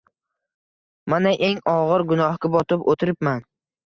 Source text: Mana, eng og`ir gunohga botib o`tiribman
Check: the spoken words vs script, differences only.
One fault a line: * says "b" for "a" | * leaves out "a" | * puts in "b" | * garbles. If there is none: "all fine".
all fine